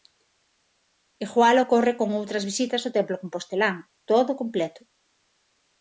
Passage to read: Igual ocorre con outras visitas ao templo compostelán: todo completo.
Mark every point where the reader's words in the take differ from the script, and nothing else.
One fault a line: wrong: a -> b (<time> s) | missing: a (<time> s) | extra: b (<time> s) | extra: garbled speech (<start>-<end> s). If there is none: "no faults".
no faults